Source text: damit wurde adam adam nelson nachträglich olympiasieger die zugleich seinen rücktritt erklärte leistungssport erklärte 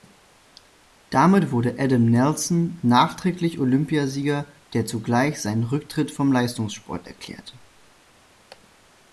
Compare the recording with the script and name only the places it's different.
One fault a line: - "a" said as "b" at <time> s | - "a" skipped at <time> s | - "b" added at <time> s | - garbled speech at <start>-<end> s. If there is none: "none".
- "adam" skipped at 2.0 s
- "die" said as "der" at 4.7 s
- "erklärte" said as "vom" at 6.1 s